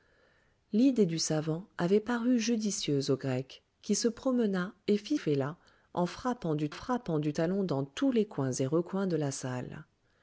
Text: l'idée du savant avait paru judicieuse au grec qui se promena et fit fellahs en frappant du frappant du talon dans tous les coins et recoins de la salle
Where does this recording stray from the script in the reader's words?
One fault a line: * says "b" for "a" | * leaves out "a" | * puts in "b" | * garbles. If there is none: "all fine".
all fine